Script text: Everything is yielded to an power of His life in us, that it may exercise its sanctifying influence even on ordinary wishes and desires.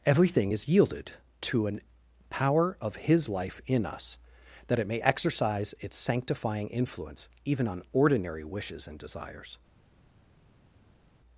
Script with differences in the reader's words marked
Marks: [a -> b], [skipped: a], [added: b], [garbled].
Everything is yielded to an power of His life in us, that it may exercise its sanctifying influence even on ordinary wishes and desires.